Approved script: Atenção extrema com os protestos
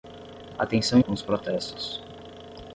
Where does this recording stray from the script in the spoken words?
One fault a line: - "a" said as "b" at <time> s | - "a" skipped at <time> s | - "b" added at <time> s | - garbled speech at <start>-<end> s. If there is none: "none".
- "extrema" skipped at 1.0 s